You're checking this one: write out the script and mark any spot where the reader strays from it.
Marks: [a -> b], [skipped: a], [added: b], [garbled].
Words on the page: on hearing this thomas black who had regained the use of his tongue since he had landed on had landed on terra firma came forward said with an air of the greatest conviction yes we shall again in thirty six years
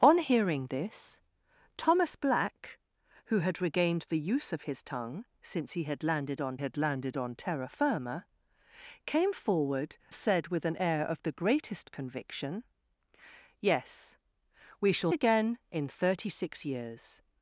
on hearing this thomas black who had regained the use of his tongue since he had landed on had landed on terra firma came forward said with an air of the greatest conviction yes we shall again in thirty six years